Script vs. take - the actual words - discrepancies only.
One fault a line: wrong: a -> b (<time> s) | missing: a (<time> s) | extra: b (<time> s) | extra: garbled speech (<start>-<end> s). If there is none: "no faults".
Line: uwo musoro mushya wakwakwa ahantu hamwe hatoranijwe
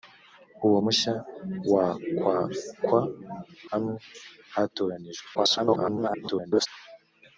missing: musoro (0.8 s)
missing: ahantu (3.0 s)
extra: garbled speech (5.3-6.7 s)